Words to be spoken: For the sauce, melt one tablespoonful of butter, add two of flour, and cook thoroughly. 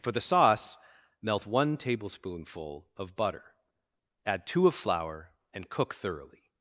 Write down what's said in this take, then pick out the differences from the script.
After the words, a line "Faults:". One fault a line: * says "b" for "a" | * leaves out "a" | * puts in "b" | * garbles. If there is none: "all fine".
For the sauce, melt one tablespoonful of butter, add two of flour, and cook thoroughly.
Faults:
all fine